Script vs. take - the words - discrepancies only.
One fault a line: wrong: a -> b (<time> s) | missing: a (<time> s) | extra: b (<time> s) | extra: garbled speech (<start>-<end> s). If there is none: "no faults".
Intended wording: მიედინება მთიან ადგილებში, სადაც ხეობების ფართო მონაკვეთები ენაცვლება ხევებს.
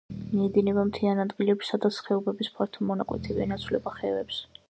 no faults